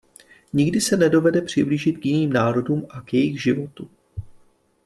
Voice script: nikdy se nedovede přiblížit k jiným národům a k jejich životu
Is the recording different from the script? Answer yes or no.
no